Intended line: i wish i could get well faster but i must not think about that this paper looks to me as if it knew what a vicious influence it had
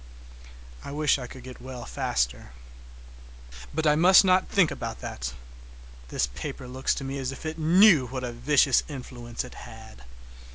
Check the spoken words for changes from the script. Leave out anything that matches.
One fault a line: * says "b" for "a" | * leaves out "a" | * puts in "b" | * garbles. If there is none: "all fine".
all fine